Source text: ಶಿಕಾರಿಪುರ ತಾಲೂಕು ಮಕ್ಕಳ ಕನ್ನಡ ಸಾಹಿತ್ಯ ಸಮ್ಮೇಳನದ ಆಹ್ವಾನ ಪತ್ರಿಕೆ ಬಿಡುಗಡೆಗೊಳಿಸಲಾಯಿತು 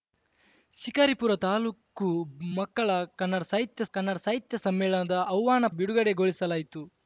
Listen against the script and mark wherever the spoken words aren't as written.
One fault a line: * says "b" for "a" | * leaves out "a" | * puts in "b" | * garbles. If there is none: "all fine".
* puts in "ಕನ್ನಡ ಸಾಹಿತ್ಯ"
* leaves out "ಪತ್ರಿಕೆ"